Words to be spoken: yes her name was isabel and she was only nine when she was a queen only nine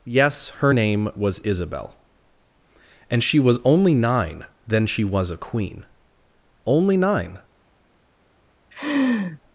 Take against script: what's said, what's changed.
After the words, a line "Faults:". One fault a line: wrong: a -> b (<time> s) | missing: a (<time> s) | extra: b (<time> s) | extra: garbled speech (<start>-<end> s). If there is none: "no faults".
yes her name was isabel and she was only nine then she was a queen only nine
Faults:
wrong: when -> then (4.7 s)